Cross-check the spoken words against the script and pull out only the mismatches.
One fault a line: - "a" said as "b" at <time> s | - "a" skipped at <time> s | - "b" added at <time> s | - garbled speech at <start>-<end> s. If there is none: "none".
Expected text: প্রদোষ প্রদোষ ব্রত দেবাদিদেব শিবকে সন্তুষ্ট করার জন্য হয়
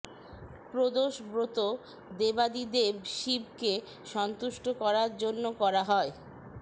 - "প্রদোষ" skipped at 1.1 s
- "করা" added at 5.6 s